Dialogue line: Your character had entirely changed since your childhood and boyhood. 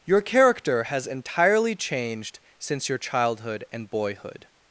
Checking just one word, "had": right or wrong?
wrong